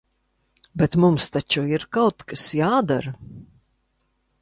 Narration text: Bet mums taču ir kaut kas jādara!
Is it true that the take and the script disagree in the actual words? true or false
false